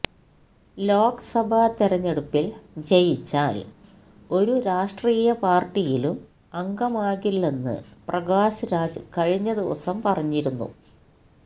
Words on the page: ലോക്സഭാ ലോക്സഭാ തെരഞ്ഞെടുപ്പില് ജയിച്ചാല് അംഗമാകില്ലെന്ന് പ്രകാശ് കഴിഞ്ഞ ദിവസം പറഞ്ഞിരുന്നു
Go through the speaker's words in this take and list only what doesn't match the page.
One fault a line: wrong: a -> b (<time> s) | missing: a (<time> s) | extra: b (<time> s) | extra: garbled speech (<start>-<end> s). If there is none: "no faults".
missing: ലോക്സഭാ (1.7 s)
extra: ഒരു രാഷ്ട്രീയ പാര്ട്ടിയിലും (4.3 s)
extra: രാജ് (8.7 s)